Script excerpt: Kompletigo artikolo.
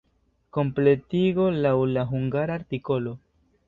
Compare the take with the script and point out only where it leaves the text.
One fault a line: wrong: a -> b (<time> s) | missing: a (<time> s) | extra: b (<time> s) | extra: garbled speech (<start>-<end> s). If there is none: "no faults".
extra: laŭ la hungara (1.6 s)